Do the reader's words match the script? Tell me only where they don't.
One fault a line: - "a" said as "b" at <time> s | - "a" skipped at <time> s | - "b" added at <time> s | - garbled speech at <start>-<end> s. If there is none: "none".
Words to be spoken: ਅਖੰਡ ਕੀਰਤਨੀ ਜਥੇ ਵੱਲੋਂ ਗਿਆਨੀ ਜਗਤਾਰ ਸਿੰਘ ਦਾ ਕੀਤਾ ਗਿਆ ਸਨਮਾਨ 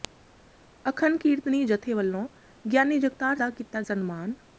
- "ਸਿੰਘ" skipped at 3.4 s
- "ਗਿਆ" skipped at 3.8 s